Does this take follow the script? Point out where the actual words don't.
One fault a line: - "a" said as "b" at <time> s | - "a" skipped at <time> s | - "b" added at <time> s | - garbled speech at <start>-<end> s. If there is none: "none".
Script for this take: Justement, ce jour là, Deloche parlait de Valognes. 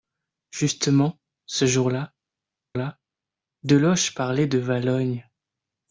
- "là" added at 2.8 s